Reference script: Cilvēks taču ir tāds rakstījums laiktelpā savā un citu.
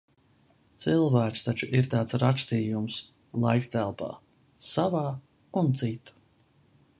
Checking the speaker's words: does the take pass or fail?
pass